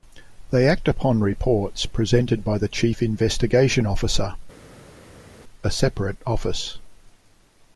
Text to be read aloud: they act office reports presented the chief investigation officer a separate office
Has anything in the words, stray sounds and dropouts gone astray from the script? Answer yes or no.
yes